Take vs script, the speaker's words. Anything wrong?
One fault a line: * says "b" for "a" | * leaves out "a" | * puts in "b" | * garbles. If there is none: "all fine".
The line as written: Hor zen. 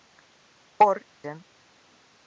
all fine